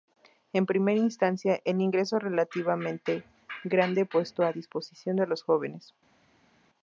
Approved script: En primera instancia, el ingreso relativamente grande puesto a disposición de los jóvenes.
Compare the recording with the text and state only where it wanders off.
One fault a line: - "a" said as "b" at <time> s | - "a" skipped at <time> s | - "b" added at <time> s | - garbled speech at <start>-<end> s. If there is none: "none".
none